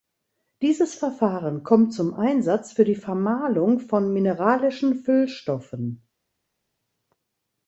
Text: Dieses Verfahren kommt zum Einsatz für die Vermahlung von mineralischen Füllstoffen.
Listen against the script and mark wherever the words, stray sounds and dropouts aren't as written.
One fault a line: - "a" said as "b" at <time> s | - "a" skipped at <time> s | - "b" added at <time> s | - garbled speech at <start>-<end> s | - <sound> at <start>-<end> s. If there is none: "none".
none